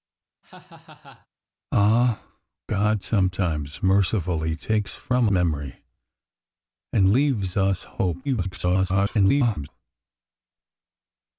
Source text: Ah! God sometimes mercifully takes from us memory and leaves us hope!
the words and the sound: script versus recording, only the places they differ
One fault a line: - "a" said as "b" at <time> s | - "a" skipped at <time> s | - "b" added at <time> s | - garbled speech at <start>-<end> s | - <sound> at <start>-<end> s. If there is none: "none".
- laugh at 0.4-1.3 s
- "us" skipped at 5.3 s
- garbled speech at 8.2-9.7 s